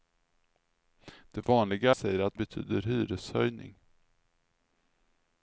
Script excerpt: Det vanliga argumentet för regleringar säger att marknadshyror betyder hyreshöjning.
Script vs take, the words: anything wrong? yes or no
yes